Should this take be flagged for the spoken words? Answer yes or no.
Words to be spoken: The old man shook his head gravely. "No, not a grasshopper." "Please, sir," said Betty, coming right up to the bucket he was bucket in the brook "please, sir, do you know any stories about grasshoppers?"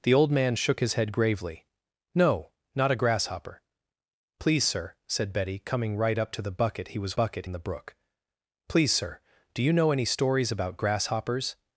no